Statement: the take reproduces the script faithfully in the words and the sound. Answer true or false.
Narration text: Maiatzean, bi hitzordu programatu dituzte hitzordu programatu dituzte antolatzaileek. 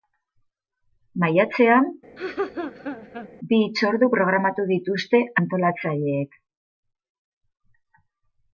false